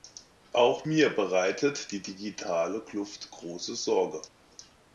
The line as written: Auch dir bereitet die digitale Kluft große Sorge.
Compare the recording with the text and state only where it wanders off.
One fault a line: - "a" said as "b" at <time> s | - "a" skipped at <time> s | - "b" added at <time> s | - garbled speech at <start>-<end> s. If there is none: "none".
- "dir" said as "mir" at 0.9 s